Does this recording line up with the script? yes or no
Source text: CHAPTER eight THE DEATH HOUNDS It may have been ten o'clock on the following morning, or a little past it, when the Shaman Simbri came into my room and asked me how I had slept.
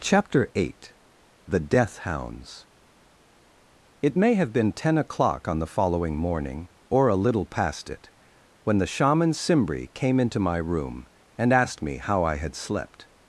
yes